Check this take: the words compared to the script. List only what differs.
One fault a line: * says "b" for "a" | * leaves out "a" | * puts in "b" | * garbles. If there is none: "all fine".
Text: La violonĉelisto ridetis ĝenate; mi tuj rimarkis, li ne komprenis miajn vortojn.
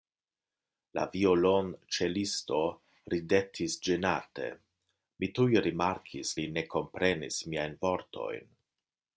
all fine